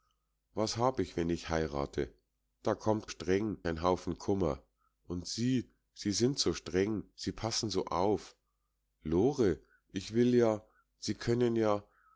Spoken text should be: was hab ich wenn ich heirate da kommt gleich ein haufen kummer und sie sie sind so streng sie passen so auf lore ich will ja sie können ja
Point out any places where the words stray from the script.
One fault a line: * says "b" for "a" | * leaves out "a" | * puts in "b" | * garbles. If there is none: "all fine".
* says "streng" for "gleich"